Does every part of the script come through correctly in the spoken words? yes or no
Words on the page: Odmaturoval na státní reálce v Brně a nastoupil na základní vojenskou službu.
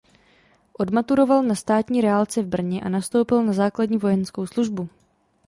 yes